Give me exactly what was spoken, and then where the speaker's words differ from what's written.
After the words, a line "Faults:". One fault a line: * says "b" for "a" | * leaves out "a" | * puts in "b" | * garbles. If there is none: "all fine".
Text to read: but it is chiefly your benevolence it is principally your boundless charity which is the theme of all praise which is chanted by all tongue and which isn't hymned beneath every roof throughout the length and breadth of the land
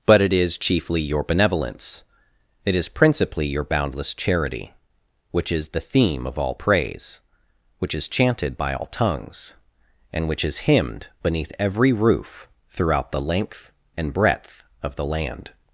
but it is chiefly your benevolence it is principally your boundless charity which is the theme of all praise which is chanted by all tongues and which is hymned beneath every roof throughout the length and breadth of the land
Faults:
* says "tongues" for "tongue"
* says "is" for "isn't"